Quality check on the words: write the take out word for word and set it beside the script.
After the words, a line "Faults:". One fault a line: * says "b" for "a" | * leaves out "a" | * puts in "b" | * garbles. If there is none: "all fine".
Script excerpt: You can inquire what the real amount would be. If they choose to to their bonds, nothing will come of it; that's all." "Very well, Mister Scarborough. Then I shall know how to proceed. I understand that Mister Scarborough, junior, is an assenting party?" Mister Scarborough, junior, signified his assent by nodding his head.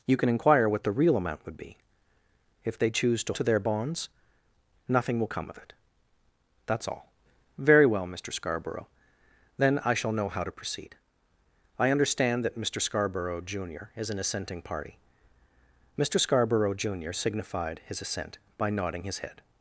You can inquire what the real amount would be. If they choose to to their bonds, nothing will come of it; that's all." "Very well, Mister Scarborough. Then I shall know how to proceed. I understand that Mister Scarborough, junior, is an assenting party?" Mister Scarborough, junior, signified his assent by nodding his head.
Faults:
all fine